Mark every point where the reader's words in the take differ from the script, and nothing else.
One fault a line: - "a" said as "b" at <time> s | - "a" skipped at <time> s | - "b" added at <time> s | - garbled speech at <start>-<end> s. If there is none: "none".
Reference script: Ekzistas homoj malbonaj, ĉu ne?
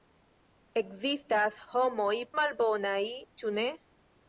none